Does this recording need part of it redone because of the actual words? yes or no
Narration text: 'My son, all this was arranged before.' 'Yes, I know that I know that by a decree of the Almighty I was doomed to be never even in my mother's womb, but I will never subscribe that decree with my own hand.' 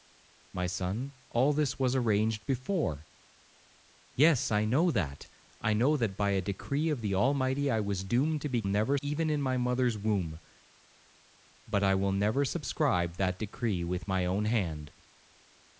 no